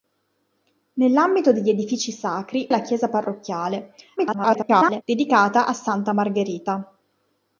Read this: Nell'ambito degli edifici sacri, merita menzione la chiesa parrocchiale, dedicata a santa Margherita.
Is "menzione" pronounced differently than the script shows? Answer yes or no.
yes